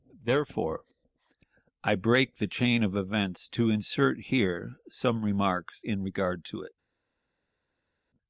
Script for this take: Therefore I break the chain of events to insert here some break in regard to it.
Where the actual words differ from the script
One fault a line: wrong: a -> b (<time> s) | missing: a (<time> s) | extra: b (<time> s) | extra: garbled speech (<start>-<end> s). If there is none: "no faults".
wrong: break -> remarks (5.2 s)